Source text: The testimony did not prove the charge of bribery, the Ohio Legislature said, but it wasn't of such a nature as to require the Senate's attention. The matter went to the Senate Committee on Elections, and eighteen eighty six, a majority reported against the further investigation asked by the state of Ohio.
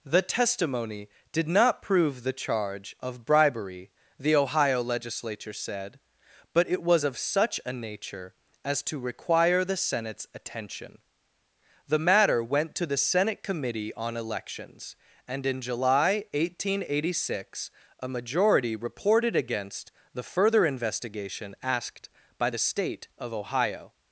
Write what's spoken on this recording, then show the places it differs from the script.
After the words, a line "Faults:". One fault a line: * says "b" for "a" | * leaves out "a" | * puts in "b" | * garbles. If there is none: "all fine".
The testimony did not prove the charge of bribery, the Ohio Legislature said, but it was of such a nature as to require the Senate's attention. The matter went to the Senate Committee on Elections, and in July, eighteen eighty six, a majority reported against the further investigation asked by the state of Ohio.
Faults:
* says "was" for "wasn't"
* puts in "in July"